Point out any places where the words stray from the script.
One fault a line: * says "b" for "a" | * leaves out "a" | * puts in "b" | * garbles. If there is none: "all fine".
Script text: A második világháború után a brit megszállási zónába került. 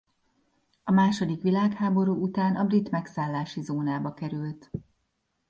all fine